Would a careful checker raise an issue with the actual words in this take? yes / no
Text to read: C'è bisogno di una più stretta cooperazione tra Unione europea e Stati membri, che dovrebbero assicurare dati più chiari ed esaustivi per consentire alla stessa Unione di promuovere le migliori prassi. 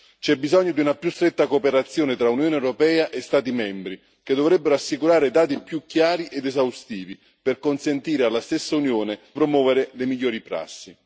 yes